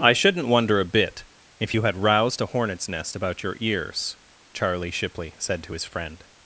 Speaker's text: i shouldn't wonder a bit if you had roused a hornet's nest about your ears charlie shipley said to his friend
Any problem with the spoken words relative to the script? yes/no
no